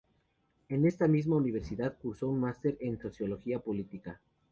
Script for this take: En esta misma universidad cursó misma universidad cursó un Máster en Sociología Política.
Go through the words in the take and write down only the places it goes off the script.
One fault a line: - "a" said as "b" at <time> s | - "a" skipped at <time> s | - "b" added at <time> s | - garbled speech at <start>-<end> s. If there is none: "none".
- "misma universidad cursó" skipped at 2.3 s